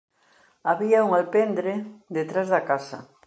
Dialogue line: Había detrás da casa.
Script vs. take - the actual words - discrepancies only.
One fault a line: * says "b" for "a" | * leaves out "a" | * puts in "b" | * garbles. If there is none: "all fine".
* puts in "un alpendre"